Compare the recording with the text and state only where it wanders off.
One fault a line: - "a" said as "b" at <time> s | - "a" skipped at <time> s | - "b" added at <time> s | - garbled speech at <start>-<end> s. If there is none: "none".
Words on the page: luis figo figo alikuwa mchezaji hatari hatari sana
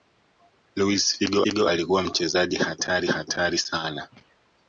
none